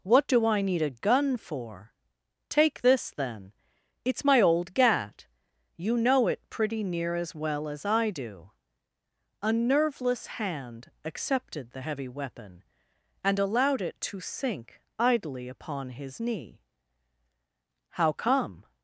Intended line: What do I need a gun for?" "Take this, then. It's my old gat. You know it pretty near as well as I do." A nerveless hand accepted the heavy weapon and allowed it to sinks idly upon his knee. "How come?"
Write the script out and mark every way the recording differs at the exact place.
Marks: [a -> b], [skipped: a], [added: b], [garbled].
What do I need a gun for?" "Take this, then. It's my old gat. You know it pretty near as well as I do." A nerveless hand accepted the heavy weapon and allowed it to [sinks -> sink] idly upon his knee. "How come?"